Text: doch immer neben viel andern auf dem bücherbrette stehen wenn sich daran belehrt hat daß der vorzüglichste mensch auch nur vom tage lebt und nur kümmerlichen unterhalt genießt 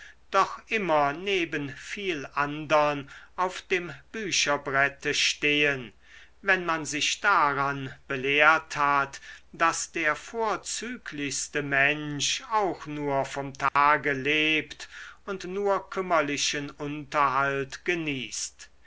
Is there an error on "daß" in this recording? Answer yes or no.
no